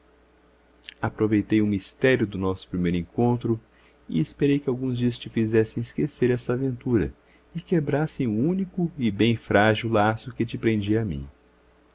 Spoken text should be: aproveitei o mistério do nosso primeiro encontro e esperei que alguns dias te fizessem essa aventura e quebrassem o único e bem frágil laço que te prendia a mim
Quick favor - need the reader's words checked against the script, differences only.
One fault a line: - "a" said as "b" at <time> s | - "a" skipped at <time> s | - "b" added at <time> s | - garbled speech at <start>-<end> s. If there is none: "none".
- "esquecer" added at 5.8 s